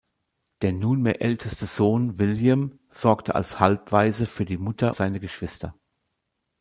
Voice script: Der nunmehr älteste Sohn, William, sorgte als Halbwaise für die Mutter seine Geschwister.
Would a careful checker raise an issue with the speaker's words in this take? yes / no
no